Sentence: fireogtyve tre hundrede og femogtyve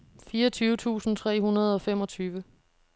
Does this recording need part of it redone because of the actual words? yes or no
yes